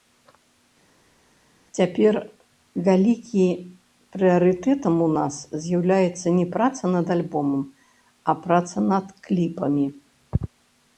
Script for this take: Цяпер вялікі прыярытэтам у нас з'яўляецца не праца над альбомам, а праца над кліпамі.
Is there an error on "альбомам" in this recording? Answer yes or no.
no